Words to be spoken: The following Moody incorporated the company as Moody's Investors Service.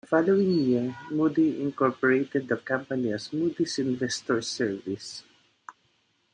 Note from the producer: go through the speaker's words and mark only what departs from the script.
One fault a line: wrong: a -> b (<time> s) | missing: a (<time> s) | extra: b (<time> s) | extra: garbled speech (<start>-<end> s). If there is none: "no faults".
extra: year (0.7 s)